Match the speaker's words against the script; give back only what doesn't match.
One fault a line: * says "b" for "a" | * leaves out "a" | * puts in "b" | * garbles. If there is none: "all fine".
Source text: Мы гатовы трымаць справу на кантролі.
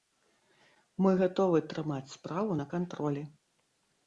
all fine